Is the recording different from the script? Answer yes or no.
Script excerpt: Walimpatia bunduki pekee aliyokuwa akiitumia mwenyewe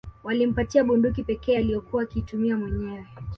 no